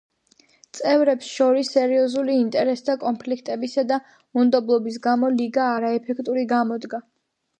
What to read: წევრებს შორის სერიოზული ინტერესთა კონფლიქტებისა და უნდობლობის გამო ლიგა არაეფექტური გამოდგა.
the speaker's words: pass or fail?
pass